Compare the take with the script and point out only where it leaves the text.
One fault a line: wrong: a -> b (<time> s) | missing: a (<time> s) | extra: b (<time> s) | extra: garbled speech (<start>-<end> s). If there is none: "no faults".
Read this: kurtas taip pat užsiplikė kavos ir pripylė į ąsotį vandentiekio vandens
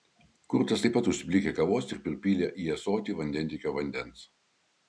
no faults